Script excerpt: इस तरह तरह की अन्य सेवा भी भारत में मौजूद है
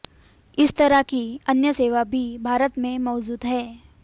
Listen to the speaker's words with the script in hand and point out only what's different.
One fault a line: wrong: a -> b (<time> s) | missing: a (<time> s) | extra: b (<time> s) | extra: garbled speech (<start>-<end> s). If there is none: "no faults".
missing: तरह (1.0 s)